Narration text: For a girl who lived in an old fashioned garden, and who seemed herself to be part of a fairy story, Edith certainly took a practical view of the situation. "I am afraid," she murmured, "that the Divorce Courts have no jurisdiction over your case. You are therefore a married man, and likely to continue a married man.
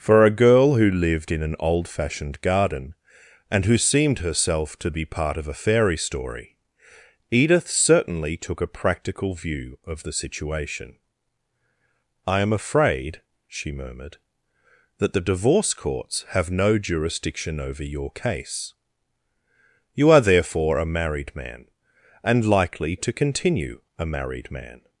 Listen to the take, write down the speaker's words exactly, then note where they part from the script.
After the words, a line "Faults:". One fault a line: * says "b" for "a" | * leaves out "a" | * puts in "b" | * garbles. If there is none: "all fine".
For a girl who lived in an old fashioned garden, and who seemed herself to be part of a fairy story, Edith certainly took a practical view of the situation. "I am afraid," she murmured, "that the Divorce Courts have no jurisdiction over your case. You are therefore a married man, and likely to continue a married man.
Faults:
all fine